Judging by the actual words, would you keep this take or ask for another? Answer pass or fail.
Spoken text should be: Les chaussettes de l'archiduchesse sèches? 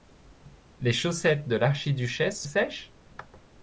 pass